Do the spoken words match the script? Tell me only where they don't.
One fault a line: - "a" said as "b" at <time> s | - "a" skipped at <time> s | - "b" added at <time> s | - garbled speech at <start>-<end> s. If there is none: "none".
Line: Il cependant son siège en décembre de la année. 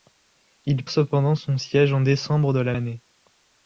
none